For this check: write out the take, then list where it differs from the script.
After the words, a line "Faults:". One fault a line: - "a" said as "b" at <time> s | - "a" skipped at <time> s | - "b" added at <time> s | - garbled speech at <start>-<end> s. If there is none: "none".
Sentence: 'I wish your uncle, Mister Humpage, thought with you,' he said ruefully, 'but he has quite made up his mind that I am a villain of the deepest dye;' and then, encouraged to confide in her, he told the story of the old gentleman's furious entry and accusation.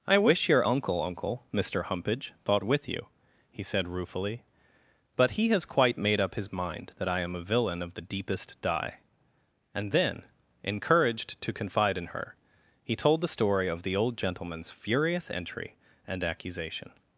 'I wish your uncle uncle, Mister Humpage, thought with you,' he said ruefully, 'but he has quite made up his mind that I am a villain of the deepest dye;' and then, encouraged to confide in her, he told the story of the old gentleman's furious entry and accusation.
Faults:
- "uncle" added at 1.0 s